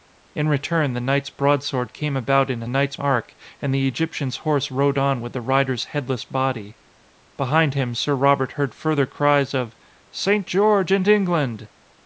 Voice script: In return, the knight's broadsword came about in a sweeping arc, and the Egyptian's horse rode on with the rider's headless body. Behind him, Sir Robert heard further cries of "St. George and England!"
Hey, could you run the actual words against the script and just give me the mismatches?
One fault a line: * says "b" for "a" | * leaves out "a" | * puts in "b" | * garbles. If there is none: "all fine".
* says "knight's" for "sweeping"